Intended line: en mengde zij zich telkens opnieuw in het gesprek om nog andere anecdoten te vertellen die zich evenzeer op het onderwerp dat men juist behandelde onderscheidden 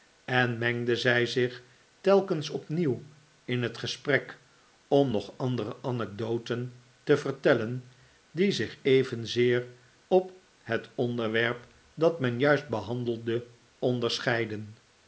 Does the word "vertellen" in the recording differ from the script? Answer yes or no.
no